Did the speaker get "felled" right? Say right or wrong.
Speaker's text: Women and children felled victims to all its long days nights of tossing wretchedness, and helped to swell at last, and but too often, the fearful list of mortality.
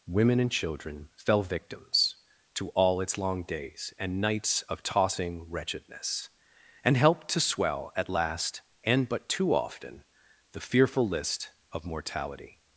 wrong